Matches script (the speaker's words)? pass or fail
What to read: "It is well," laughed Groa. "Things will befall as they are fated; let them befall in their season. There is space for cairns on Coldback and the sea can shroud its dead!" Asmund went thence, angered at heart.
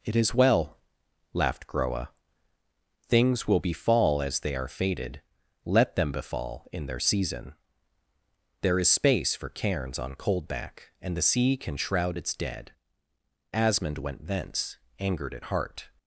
pass